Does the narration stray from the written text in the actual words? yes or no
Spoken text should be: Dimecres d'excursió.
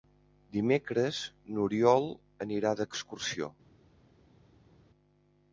yes